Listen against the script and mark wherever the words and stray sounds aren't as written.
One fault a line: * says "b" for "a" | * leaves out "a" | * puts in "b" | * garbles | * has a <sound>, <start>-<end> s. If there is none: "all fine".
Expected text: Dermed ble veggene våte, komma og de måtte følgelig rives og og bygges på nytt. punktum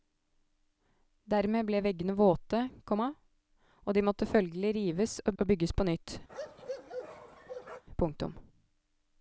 * has a bark, 6.3-7.8 s